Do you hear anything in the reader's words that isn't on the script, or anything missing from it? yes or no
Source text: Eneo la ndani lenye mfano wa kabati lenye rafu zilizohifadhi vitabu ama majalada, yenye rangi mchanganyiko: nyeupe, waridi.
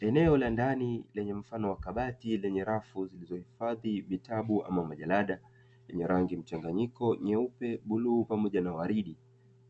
yes